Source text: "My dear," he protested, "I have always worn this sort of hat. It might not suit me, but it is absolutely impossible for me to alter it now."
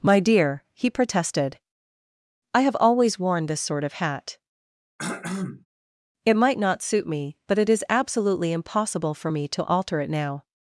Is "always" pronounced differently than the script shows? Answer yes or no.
no